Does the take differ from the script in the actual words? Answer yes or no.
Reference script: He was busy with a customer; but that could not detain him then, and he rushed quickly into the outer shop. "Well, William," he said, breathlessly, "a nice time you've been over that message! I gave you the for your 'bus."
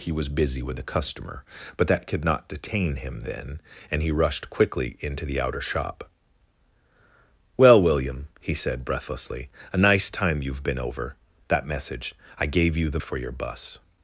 no